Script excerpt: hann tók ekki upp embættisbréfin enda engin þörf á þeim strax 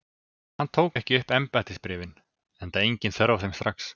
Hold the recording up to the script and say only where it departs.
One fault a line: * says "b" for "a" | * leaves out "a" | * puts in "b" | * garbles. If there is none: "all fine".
all fine